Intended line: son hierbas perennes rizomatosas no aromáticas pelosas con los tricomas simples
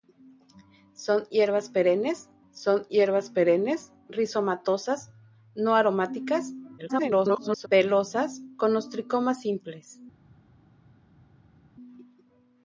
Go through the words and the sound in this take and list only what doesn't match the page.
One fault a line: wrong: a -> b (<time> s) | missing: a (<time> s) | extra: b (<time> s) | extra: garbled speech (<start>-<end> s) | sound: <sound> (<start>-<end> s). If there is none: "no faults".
extra: son hierbas perennes (2.5 s)
extra: garbled speech (6.8-7.7 s)